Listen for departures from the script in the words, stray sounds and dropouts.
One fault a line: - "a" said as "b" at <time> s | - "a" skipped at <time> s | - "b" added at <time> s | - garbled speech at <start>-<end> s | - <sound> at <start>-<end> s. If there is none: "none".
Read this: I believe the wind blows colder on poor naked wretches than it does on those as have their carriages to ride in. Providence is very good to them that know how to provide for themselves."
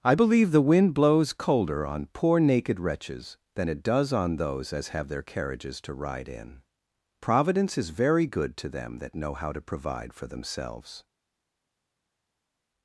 none